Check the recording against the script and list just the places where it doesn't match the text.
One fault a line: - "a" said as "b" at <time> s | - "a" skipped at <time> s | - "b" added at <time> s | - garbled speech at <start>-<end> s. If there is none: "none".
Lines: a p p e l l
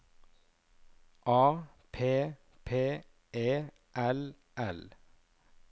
none